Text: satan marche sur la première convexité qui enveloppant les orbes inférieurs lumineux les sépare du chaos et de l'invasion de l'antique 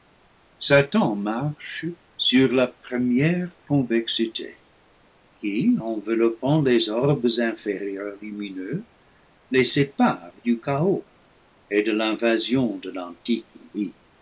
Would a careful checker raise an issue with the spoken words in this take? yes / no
no